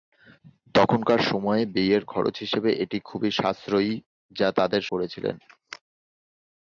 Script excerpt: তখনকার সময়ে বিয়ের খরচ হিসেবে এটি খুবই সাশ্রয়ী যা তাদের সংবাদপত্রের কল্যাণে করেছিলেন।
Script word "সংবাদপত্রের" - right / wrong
wrong